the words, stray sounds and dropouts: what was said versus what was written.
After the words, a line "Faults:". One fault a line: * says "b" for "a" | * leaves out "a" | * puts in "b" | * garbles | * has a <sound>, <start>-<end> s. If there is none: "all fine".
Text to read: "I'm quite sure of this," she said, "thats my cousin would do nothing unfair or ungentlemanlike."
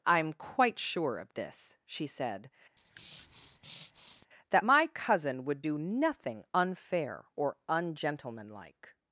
"I'm quite sure of this," she said, "that my cousin would do nothing unfair or ungentlemanlike."
Faults:
* has a breath, 2.8-4.3 s
* says "that" for "thats"